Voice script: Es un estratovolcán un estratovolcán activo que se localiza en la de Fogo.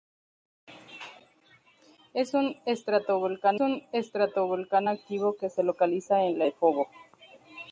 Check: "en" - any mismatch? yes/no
no